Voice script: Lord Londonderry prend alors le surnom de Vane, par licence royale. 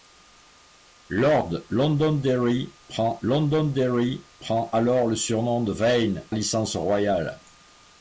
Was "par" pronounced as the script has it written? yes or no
no